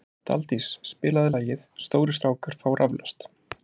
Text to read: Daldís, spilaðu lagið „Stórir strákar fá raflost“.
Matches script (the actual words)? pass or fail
pass